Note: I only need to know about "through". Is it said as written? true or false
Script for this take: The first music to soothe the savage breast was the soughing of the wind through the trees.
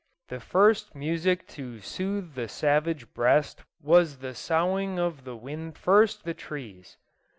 false